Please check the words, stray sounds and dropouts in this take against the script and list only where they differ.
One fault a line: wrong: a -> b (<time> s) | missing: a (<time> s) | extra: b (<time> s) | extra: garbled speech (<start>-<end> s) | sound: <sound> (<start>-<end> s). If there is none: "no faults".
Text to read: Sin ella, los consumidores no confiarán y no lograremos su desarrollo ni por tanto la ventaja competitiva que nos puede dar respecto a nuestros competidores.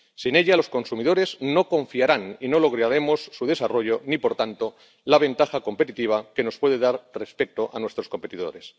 no faults